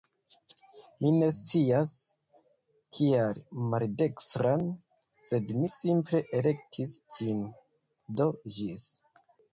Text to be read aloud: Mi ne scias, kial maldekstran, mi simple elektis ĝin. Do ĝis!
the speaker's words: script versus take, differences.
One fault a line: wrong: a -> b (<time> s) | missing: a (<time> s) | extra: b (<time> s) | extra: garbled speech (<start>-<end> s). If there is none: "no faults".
extra: sed (5.3 s)